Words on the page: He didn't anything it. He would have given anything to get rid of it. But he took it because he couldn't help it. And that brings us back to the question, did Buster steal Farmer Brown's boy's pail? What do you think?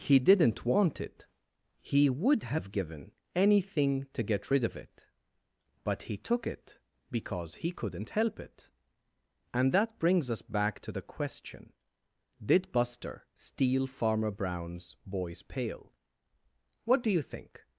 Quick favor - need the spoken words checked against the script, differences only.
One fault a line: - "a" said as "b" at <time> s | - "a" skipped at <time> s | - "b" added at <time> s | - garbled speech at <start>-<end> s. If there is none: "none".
- "anything" said as "want" at 0.7 s